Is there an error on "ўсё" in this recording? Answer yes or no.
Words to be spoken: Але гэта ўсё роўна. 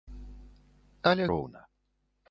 yes